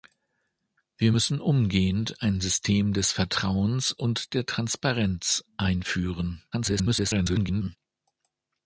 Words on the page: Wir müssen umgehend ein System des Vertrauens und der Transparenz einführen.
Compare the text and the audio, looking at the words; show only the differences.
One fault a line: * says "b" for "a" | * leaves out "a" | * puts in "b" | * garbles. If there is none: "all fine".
* garbles